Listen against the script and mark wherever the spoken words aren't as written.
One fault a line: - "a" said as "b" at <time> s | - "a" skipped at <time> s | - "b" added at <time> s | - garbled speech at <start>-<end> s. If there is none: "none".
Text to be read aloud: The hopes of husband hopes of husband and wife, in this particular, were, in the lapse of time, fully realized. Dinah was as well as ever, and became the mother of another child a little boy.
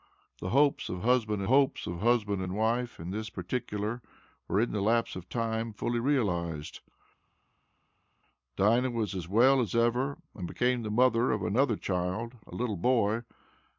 none